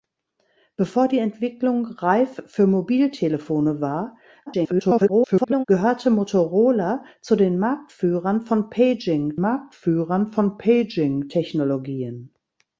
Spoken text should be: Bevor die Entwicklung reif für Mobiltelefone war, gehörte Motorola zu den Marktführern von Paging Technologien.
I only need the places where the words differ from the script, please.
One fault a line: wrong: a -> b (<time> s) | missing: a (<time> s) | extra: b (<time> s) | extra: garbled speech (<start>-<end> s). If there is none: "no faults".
extra: garbled speech (4.5-5.6 s)
extra: Marktführern von Paging (9.4 s)